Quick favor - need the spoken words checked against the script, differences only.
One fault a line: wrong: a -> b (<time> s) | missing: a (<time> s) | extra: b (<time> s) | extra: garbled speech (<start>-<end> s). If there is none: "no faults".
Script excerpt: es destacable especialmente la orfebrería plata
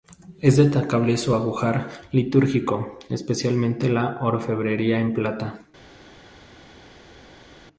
extra: su ajuar litúrgico (1.1 s)
extra: en (5.0 s)